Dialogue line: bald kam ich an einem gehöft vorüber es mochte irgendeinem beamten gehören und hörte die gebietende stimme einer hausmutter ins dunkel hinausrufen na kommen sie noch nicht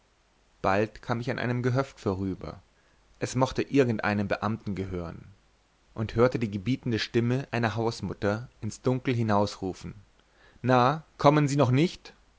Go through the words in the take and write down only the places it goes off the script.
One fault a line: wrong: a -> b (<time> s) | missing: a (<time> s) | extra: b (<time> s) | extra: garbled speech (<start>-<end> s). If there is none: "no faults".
no faults